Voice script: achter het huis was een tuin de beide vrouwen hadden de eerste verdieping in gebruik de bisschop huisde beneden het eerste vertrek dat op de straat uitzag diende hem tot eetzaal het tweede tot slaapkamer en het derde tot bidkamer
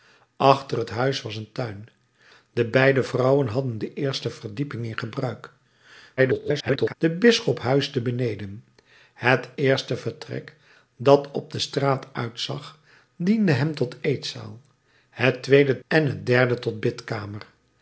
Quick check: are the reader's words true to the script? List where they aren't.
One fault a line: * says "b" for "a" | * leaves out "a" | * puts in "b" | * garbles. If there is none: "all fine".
* garbles
* leaves out "tot slaapkamer"